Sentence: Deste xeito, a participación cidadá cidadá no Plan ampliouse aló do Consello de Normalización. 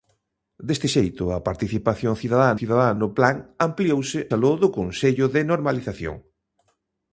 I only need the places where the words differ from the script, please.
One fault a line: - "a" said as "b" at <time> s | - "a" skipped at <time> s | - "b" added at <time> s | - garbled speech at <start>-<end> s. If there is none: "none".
none